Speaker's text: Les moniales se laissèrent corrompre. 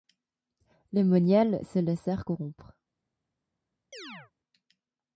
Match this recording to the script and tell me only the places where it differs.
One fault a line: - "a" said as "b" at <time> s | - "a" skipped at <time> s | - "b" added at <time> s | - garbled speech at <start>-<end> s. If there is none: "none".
none